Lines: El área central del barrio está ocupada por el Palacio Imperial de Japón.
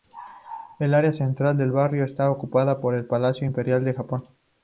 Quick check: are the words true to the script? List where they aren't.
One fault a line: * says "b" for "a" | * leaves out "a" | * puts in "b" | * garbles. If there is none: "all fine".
all fine